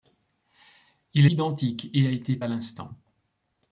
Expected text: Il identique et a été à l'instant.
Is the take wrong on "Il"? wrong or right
right